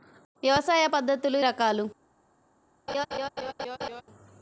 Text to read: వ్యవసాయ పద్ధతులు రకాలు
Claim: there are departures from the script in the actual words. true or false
false